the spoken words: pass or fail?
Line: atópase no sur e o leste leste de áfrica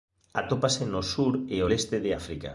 fail